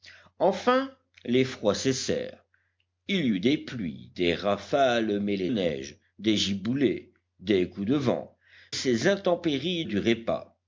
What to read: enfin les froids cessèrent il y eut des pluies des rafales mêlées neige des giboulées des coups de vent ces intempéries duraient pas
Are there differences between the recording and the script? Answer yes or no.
no